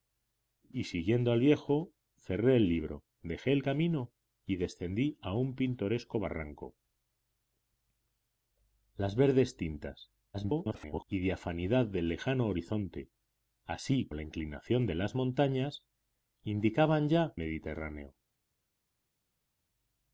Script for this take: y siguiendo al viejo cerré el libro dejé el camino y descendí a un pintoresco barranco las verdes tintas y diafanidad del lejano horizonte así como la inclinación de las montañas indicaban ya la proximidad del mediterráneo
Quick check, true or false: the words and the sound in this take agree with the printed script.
false